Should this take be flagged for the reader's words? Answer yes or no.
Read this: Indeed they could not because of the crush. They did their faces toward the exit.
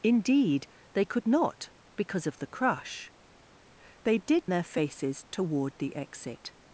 no